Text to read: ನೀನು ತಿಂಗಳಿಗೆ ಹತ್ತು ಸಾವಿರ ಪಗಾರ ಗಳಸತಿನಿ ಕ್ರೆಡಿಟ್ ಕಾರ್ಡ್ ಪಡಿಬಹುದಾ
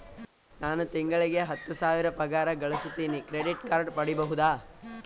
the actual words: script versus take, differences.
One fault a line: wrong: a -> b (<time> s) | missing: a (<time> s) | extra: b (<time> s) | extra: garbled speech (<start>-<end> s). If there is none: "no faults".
wrong: ನೀನು -> ನಾನು (0.6 s)